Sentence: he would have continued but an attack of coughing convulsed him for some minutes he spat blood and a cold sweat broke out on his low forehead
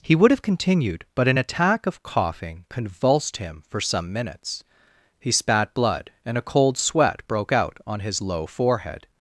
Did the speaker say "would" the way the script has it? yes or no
yes